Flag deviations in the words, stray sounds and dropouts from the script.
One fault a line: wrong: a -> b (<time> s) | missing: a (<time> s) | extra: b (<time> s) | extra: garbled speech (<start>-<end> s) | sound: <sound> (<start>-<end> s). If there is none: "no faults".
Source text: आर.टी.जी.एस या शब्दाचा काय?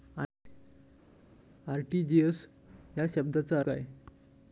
no faults